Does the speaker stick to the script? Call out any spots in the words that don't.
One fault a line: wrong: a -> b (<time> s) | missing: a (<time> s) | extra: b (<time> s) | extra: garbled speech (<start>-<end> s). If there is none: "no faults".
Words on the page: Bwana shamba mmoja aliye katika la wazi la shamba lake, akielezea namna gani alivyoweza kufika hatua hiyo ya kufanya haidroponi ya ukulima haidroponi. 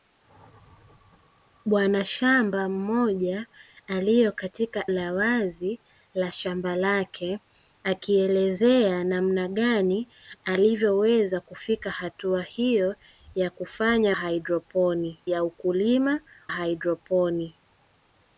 no faults